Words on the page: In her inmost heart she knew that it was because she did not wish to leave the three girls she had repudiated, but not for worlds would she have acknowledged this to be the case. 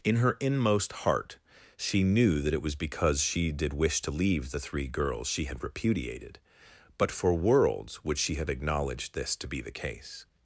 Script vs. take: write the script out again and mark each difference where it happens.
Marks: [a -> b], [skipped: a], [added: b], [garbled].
In her inmost heart she knew that it was because she did [skipped: not] wish to leave the three girls she had repudiated, but [skipped: not] for worlds would she have acknowledged this to be the case.